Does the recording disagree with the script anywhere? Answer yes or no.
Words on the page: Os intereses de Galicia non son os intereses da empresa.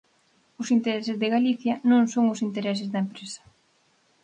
no